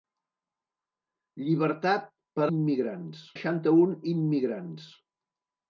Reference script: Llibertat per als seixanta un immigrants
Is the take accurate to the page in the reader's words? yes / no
no